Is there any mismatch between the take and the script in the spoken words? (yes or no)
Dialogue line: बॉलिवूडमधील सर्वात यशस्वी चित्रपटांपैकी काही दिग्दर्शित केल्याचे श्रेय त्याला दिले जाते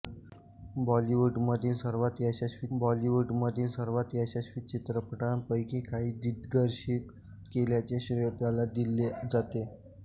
yes